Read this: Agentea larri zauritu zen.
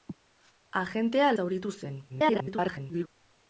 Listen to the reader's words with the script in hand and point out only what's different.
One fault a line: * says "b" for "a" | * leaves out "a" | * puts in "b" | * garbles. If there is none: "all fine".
* leaves out "larri"
* garbles